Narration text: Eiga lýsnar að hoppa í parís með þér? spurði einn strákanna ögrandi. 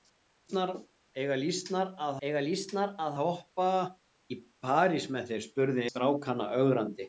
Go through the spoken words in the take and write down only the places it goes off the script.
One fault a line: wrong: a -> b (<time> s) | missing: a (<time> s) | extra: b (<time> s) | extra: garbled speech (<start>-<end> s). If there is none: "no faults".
extra: eiga lýsnar að (2.3 s)
missing: einn (5.9 s)